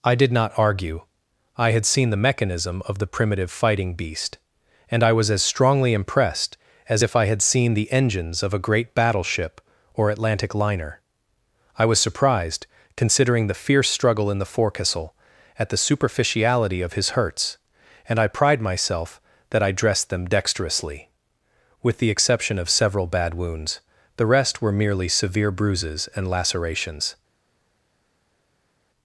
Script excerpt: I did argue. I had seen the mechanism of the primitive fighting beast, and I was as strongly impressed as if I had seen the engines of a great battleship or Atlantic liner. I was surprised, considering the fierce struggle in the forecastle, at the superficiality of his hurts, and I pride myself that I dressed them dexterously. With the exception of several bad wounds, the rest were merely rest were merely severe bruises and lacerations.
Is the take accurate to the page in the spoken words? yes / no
no